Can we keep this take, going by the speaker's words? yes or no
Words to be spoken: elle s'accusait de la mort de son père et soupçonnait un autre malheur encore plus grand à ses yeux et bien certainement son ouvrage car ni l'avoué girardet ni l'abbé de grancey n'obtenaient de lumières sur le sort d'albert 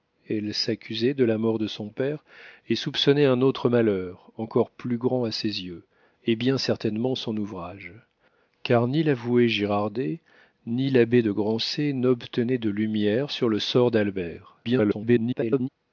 no